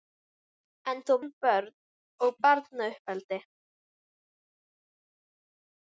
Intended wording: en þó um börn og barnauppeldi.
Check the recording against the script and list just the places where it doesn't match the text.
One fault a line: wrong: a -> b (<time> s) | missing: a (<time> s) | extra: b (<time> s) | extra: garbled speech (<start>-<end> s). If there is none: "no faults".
no faults